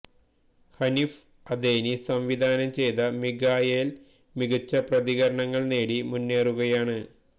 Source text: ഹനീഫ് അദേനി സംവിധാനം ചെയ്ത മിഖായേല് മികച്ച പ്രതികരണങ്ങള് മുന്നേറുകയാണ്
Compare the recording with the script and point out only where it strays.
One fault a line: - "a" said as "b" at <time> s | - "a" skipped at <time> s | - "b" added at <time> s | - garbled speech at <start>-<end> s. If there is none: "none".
- "നേടി" added at 5.7 s